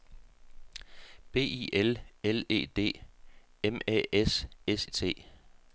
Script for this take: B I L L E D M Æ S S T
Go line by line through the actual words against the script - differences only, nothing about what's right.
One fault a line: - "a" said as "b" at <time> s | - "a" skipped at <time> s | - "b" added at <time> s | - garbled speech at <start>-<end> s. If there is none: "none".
none